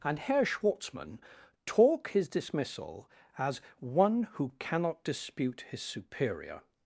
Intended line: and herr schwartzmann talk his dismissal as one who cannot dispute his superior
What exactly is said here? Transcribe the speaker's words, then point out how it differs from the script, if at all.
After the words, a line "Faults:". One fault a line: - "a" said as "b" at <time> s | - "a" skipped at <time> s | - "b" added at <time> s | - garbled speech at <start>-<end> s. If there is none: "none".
and herr schwartzmann talk his dismissal as one who cannot dispute his superior
Faults:
none